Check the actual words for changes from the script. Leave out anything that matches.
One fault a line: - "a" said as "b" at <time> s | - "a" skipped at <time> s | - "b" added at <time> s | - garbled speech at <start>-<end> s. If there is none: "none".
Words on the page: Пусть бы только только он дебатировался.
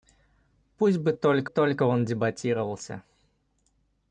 none